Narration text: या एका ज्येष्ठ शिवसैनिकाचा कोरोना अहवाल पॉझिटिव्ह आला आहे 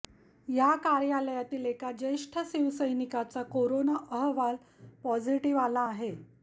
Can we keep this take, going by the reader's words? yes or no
no